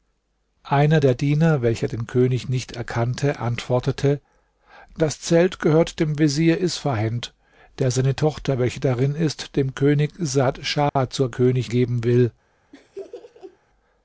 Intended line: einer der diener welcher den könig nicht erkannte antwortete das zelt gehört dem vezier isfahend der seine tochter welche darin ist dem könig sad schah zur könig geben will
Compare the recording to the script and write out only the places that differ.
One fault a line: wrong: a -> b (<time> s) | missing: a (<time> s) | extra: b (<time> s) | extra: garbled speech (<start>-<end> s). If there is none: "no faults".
no faults